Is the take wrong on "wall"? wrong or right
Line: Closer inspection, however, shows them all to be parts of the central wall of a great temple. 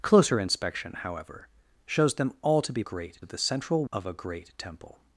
wrong